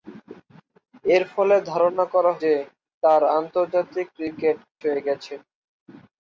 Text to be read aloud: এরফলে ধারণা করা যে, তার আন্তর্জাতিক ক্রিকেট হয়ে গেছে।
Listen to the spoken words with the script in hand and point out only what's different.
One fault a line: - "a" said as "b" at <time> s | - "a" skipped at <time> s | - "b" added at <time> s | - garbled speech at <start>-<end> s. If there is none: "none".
none